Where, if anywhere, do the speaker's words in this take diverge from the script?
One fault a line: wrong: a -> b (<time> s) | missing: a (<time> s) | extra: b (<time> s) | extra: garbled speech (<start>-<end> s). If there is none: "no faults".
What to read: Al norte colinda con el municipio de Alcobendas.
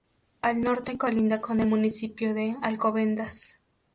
no faults